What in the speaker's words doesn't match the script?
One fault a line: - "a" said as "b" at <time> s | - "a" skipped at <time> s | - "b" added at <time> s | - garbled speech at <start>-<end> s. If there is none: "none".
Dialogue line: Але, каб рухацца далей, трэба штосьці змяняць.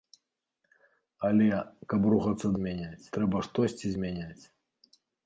- "далей" said as "змяняць" at 2.6 s